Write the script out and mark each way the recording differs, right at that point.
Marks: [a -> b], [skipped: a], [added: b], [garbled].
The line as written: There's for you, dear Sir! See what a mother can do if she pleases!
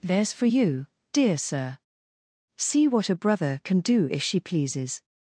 There's for you, dear Sir! See what a [mother -> brother] can do if she pleases!